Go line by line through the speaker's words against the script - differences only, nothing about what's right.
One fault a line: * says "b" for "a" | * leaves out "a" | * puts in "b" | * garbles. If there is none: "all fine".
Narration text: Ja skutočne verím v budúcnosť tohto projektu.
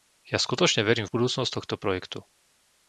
all fine